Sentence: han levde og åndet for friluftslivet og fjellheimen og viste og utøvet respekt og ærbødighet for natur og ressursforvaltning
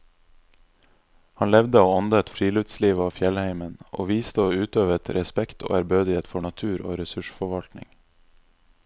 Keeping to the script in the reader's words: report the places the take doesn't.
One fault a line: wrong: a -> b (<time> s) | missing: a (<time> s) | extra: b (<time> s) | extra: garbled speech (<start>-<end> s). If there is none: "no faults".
missing: for (2.3 s)